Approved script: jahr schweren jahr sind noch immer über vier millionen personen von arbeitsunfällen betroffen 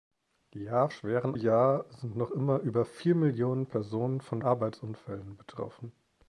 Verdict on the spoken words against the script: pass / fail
pass